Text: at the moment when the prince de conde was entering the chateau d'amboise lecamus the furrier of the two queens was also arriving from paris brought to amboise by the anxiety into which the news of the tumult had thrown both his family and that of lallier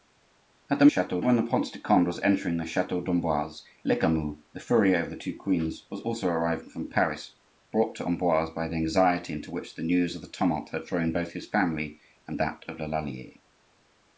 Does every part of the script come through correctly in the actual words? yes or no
no